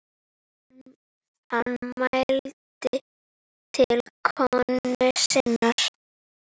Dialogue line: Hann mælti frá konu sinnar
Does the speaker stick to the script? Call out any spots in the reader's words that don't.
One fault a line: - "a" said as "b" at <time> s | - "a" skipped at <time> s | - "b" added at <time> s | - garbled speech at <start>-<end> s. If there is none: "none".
- "frá" said as "til" at 3.7 s